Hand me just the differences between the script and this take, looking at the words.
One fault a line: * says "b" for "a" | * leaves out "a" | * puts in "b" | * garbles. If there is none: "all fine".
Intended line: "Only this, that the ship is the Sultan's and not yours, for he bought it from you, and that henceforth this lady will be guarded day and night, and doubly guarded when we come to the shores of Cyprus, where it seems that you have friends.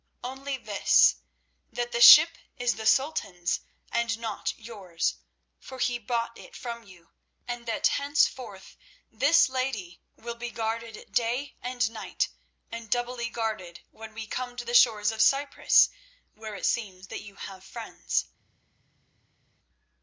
all fine